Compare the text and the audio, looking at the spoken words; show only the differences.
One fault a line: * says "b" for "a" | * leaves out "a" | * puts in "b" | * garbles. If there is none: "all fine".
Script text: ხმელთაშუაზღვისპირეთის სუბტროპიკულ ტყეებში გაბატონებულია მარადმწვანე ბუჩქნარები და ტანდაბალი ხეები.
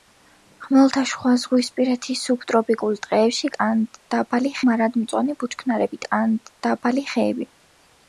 * says "ტანდაბალი" for "გაბატონებულია"
* leaves out "და"